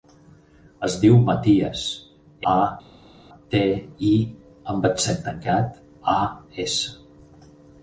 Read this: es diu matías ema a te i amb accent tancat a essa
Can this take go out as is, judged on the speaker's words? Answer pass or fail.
fail